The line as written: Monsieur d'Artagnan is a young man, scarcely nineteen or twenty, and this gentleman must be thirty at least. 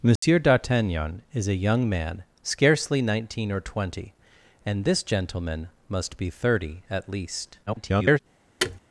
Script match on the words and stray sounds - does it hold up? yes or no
no